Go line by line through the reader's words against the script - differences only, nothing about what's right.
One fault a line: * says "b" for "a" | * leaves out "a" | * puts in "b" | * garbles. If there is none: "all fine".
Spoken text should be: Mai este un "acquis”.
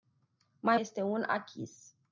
all fine